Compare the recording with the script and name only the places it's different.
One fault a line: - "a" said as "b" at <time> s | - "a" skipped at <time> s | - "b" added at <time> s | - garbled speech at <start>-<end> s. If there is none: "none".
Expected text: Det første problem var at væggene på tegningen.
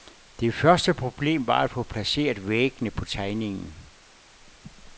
- "få placeret" added at 1.7 s